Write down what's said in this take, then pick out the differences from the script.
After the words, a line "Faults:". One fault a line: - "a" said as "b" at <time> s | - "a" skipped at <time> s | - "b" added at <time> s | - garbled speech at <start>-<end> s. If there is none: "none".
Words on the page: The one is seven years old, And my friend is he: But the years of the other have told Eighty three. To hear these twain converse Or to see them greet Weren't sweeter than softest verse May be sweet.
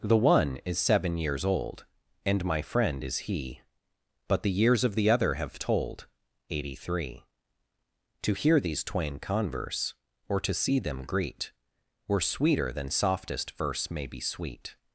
The one is seven years old, And my friend is he: But the years of the other have told Eighty three. To hear these twain converse Or to see them greet Were sweeter than softest verse May be sweet.
Faults:
- "Weren't" said as "Were" at 12.1 s